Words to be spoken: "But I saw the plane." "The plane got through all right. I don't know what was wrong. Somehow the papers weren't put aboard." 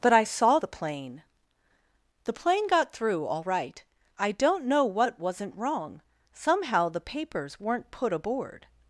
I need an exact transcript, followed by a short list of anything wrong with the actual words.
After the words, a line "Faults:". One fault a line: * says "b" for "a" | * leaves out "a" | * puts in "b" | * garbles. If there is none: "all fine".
"But I saw the plane." "The plane got through all right. I don't know what wasn't wrong. Somehow the papers weren't put aboard."
Faults:
* says "wasn't" for "was"